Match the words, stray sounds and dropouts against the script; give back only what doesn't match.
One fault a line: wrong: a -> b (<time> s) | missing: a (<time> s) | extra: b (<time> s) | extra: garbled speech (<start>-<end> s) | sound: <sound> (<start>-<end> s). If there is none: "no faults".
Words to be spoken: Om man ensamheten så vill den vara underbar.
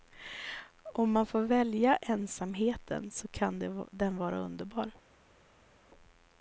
extra: får välja (1.2 s)
wrong: vill -> kan (3.3 s)